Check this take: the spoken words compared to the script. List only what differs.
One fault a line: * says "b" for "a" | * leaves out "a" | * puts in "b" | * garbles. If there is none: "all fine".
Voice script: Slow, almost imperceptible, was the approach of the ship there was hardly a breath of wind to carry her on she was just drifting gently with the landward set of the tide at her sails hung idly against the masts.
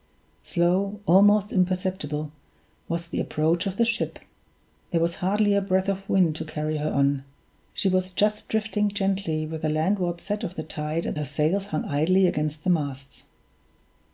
all fine